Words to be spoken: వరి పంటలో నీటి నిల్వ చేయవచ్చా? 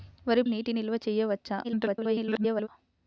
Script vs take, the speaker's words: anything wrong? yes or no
yes